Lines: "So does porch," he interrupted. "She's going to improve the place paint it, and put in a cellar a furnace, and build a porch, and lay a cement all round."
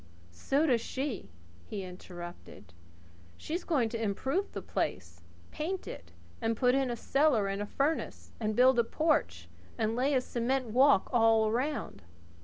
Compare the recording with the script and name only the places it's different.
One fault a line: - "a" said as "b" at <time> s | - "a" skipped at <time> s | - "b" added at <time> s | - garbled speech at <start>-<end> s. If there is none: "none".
- "porch" said as "she" at 0.8 s
- "and" added at 7.5 s
- "walk" added at 10.7 s